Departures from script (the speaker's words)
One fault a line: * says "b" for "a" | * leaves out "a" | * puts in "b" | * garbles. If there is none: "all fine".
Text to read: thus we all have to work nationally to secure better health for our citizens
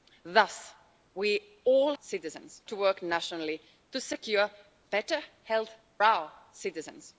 * says "citizens" for "have"
* leaves out "for"